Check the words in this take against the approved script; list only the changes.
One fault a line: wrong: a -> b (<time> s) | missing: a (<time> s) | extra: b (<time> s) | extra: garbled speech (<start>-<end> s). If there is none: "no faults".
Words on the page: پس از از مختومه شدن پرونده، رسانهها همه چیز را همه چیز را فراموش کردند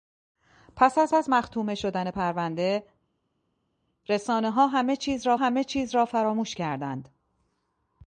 no faults